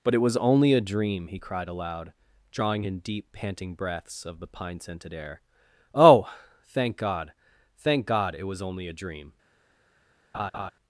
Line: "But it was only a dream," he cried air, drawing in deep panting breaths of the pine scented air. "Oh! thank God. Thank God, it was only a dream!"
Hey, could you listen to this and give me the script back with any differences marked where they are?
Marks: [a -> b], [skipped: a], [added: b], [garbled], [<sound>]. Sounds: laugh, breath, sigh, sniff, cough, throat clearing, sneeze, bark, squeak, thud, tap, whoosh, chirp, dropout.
"But it was only a dream," he cried [air, -> aloud] drawing in deep panting breaths of the pine scented air. "Oh! thank God. Thank God, it was only a dream!" [laugh]